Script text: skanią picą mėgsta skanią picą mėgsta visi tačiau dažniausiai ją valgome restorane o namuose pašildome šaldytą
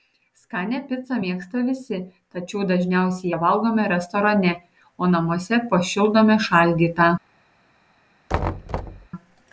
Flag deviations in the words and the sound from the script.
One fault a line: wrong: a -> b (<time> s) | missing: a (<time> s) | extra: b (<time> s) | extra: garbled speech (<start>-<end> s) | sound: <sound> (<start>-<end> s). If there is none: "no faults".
missing: skanią picą mėgsta (1.6 s)
sound: thud (8.3-9.1 s)